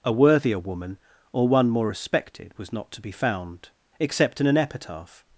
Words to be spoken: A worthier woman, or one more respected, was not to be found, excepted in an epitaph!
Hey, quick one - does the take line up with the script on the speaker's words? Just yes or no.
no